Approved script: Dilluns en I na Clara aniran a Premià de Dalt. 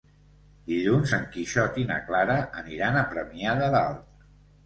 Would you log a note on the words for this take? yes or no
yes